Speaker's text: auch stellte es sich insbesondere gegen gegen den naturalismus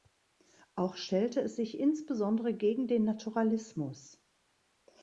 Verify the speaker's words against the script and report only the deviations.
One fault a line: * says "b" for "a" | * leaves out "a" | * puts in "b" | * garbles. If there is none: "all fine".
* leaves out "gegen"